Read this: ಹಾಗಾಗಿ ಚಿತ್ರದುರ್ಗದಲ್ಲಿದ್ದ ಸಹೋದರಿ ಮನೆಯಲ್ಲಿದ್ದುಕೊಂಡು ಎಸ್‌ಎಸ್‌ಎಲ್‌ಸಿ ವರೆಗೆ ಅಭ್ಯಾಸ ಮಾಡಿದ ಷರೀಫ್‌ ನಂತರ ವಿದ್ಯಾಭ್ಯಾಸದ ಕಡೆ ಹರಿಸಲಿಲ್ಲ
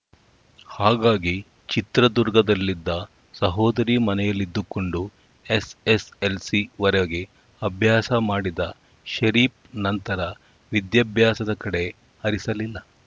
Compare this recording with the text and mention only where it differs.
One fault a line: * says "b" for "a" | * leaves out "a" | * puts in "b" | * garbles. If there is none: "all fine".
all fine